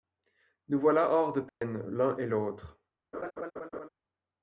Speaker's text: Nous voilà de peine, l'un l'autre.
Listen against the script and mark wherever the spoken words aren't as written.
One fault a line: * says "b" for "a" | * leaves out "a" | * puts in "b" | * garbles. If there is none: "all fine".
* puts in "hors"
* puts in "et"